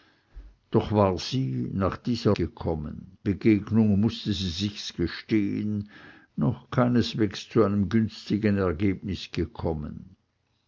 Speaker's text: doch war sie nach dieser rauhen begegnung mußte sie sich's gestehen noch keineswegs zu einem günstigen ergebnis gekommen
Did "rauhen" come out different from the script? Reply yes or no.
yes